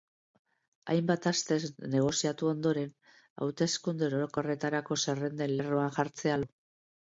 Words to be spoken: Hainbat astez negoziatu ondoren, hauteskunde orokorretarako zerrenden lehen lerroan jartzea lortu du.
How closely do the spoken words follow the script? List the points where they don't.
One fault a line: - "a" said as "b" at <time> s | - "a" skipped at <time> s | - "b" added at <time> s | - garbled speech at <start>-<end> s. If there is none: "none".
- "lehen" skipped at 5.6 s
- "lortu" skipped at 6.4 s